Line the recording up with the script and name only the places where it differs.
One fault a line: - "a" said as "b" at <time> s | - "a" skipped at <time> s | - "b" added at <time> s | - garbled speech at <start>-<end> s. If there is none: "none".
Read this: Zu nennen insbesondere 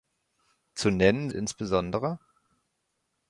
none